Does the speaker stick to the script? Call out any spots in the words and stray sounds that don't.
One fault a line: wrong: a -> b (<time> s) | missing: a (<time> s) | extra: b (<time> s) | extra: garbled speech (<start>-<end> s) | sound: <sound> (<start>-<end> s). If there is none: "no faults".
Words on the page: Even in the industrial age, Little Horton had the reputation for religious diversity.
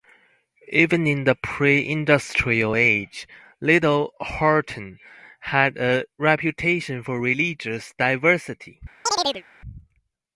extra: pre (1.4 s)
wrong: the -> a (5.8 s)
sound: chirp (9.1-9.4 s)